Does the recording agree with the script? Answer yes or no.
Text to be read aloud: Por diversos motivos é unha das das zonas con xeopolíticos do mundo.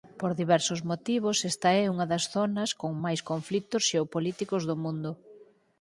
no